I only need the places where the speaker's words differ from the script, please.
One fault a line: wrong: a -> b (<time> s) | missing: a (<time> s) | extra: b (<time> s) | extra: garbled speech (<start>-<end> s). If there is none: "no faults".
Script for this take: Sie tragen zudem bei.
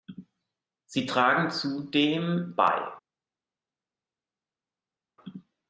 no faults